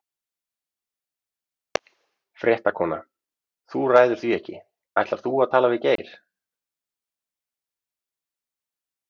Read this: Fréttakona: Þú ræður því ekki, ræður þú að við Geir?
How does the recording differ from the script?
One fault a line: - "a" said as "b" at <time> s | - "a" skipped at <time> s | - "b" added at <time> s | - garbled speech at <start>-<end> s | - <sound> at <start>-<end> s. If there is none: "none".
- "ræður" said as "ætlar" at 5.0 s
- "tala" added at 5.5 s
- dropout at 6.0-6.0 s